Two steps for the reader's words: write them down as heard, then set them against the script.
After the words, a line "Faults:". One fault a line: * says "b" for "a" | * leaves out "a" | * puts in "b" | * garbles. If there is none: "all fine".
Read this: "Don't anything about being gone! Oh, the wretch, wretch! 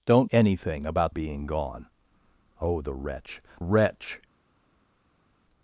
"Don't anything about being gone! Oh, the wretch, wretch!
Faults:
all fine